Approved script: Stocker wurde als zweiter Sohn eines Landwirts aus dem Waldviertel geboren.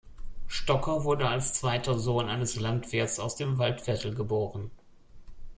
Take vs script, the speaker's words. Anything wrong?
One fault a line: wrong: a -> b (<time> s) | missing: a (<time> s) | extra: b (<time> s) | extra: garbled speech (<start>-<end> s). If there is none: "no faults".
no faults